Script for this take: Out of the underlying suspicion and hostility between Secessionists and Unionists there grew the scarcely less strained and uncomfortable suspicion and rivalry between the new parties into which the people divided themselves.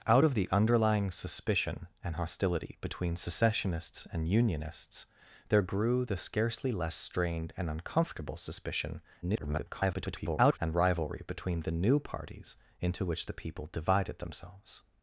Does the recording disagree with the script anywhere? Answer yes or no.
yes